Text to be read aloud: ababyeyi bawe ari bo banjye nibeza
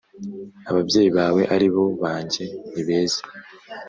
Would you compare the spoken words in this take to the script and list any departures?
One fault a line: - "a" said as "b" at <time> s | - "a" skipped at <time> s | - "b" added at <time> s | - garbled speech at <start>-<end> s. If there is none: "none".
none